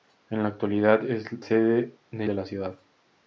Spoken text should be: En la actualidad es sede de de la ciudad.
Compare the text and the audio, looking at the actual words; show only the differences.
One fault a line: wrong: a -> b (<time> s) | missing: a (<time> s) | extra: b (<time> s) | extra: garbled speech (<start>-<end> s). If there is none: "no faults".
no faults